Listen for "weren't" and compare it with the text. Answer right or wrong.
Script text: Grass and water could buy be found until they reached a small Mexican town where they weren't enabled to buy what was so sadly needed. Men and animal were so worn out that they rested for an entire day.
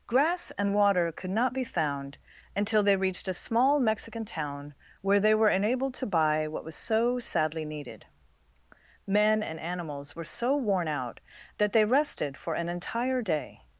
wrong